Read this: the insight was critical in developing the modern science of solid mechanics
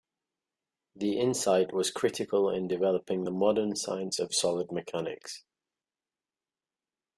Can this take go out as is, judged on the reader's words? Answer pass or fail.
pass